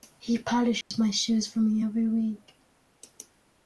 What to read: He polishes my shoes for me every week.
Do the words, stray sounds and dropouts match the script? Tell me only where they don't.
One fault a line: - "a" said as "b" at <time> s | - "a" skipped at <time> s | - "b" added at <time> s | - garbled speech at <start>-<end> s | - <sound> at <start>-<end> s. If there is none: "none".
- dropout at 0.8-0.9 s